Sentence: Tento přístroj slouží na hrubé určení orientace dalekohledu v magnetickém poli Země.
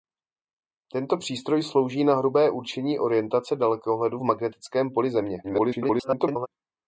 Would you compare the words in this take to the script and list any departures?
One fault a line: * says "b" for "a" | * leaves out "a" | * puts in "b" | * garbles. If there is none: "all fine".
* garbles